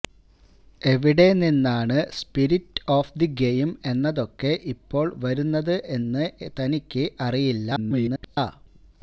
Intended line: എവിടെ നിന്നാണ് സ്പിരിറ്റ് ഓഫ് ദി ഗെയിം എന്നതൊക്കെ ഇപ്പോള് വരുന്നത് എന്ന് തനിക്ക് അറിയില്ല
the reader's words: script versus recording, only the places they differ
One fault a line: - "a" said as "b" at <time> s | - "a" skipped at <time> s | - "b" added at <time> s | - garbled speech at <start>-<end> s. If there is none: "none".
- garbled speech at 7.8-8.4 s